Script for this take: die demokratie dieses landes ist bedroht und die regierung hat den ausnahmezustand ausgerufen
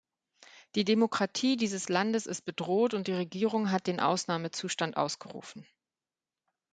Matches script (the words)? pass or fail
pass